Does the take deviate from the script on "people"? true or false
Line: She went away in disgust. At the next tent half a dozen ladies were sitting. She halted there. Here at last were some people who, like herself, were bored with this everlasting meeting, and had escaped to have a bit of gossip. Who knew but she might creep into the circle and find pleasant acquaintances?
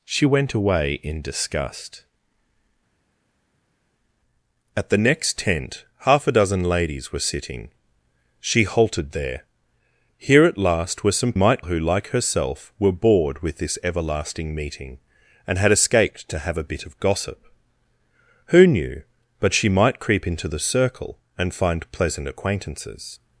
true